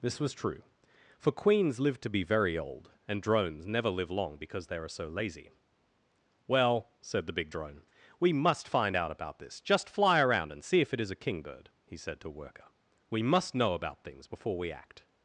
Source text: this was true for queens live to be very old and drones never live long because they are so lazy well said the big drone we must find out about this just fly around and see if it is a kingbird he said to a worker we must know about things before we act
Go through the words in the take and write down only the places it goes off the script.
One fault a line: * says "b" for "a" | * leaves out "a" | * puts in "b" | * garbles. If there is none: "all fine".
* leaves out "a"